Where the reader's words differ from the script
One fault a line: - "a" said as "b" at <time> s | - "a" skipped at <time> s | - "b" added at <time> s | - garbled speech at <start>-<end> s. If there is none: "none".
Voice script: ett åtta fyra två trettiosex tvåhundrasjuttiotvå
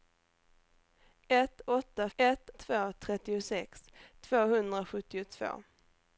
- "fyra" said as "ett" at 2.2 s